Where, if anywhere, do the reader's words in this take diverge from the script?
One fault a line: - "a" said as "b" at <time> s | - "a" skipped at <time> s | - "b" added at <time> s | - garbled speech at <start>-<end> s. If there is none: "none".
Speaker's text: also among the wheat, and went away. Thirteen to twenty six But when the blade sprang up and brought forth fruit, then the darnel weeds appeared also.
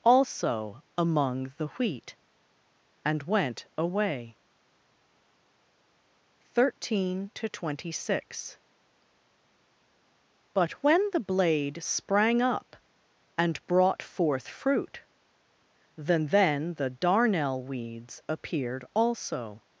- "then" added at 16.3 s